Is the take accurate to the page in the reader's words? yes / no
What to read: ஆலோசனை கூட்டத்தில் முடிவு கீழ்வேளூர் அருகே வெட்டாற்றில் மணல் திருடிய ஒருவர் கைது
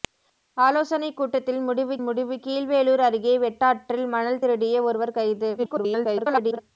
no